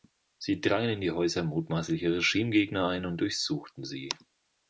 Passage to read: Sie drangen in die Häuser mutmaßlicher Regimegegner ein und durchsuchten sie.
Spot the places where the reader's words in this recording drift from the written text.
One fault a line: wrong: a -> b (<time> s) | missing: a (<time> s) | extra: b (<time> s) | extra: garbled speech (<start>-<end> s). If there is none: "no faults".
no faults